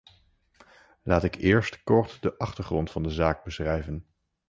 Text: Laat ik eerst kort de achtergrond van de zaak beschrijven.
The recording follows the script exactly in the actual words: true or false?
true